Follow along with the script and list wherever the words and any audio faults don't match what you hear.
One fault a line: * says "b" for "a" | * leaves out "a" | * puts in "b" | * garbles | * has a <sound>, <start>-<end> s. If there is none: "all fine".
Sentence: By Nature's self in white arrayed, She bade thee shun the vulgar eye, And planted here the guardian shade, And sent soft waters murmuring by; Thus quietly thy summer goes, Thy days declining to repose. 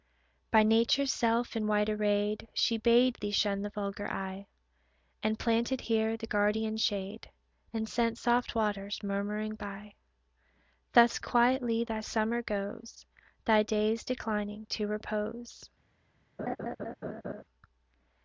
* has a laugh, 16.4-17.4 s